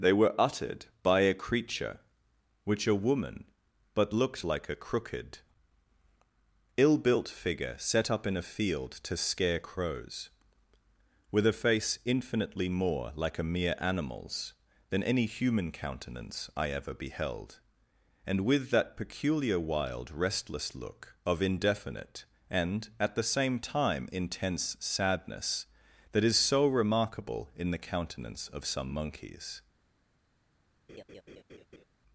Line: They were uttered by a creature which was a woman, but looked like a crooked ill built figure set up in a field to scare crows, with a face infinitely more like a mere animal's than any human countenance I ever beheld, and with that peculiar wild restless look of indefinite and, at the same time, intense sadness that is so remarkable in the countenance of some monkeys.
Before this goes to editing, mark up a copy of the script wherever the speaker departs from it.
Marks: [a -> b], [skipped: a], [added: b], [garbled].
They were uttered by a creature which [skipped: was] a woman, but looked like a crooked ill built figure set up in a field to scare crows, with a face infinitely more like a mere animal's than any human countenance I ever beheld, and with that peculiar wild restless look of indefinite and, at the same time, intense sadness that is so remarkable in the countenance of some monkeys.